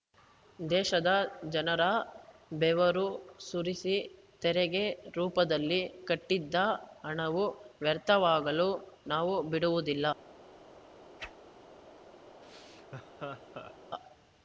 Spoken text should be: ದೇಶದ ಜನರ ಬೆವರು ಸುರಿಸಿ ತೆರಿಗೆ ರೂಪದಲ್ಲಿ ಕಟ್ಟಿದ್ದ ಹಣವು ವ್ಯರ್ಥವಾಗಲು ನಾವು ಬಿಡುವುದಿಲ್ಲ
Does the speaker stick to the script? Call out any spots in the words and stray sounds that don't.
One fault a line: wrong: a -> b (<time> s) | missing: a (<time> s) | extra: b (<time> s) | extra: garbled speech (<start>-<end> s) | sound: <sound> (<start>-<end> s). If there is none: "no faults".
sound: whoosh (11.2-11.4 s)
sound: laugh (12.4-13.7 s)